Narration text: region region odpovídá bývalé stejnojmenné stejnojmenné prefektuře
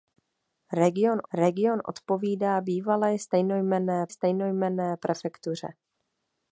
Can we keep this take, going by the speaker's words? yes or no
yes